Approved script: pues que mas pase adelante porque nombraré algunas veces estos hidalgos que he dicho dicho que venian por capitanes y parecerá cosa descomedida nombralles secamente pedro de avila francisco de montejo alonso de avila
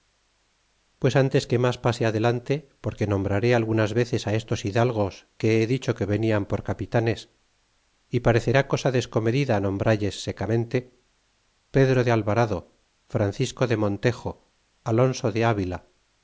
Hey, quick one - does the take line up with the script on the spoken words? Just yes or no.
no